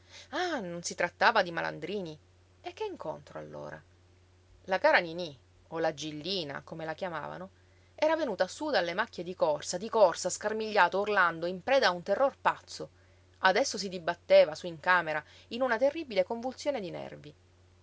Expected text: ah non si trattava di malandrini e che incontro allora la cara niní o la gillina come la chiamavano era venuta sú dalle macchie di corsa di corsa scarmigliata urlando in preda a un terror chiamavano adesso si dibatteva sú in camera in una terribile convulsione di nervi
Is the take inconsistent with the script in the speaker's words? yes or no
yes